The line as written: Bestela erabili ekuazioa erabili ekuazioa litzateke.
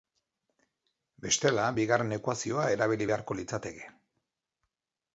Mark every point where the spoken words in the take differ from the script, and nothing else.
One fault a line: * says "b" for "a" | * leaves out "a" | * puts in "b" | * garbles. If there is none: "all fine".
* says "bigarren" for "erabili"
* says "beharko" for "ekuazioa"